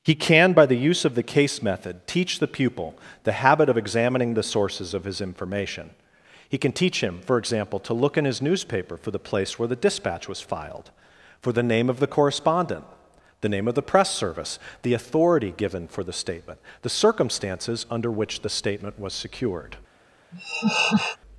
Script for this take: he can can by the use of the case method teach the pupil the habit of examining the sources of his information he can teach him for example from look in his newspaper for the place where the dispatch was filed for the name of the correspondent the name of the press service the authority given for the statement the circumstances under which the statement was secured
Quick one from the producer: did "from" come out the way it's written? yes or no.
no